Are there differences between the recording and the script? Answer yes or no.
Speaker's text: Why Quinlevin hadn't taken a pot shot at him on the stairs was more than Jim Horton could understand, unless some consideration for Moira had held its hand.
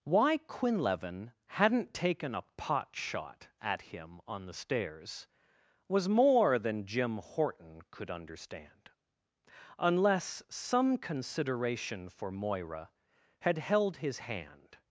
yes